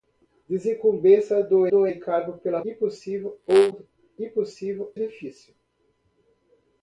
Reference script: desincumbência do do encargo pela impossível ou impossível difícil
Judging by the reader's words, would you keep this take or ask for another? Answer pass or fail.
pass